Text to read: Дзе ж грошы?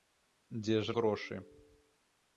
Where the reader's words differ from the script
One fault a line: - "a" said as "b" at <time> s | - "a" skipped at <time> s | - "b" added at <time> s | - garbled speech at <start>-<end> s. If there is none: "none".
none